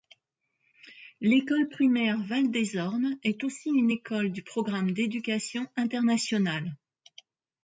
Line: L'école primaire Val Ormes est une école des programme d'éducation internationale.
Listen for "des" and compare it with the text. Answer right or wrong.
wrong